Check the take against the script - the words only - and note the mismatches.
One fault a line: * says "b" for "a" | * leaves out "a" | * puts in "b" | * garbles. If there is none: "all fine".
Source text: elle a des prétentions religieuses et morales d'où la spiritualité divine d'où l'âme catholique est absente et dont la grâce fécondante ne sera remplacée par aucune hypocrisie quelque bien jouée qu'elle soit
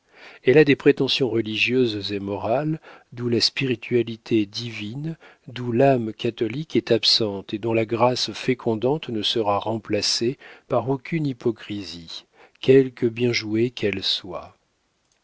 all fine